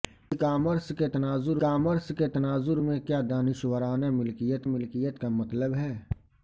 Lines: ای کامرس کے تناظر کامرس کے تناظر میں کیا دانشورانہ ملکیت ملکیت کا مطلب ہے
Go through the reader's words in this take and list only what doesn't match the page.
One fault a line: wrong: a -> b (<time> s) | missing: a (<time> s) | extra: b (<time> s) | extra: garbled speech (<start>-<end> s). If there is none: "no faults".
no faults